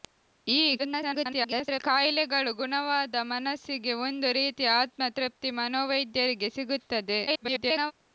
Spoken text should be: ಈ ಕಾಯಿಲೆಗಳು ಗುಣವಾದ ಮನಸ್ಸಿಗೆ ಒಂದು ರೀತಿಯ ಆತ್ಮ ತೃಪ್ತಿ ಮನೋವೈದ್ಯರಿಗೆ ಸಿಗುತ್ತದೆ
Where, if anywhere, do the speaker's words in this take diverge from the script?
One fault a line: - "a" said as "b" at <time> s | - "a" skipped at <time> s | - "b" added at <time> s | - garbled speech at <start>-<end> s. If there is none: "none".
- garbled speech at 0.8-1.8 s
- garbled speech at 7.3-7.9 s